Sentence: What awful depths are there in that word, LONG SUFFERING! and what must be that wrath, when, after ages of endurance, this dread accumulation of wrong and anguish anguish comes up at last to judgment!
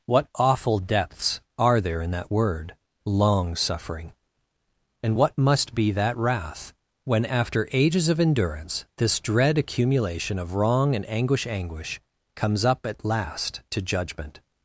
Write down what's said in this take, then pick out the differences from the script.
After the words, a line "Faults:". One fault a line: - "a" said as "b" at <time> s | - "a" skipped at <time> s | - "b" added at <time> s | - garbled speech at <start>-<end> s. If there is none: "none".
What awful depths are there in that word, LONG SUFFERING! and what must be that wrath, when, after ages of endurance, this dread accumulation of wrong and anguish anguish comes up at last to judgment!
Faults:
none